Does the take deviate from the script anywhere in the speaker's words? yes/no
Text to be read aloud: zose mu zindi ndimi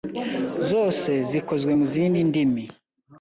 yes